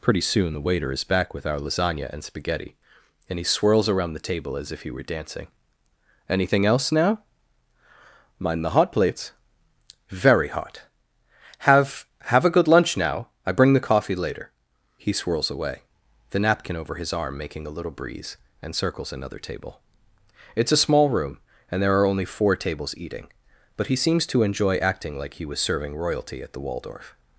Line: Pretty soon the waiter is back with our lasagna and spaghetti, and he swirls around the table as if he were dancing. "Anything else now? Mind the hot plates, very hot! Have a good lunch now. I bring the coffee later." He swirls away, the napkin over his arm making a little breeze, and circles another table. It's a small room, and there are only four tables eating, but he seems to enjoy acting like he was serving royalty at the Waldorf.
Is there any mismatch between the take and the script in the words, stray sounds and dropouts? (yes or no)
yes